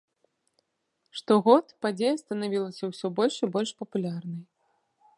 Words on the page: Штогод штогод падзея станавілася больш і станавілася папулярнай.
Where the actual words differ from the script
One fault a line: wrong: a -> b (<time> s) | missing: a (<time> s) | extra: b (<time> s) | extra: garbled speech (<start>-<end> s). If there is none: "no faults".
missing: штогод (1.6 s)
extra: ўсё (2.9 s)
wrong: станавілася -> больш (3.6 s)